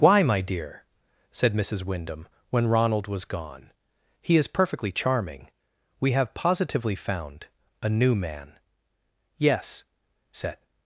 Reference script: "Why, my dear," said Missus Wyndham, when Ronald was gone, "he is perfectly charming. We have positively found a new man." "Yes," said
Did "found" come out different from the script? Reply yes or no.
no